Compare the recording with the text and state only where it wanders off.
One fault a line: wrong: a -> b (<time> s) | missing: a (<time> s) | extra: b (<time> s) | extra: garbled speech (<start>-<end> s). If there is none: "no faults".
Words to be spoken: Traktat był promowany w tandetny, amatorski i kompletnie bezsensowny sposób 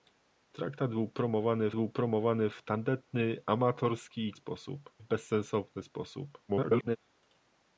extra: był promowany (1.7 s)
wrong: kompletnie -> sposób (4.3 s)
extra: garbled speech (6.5-7.0 s)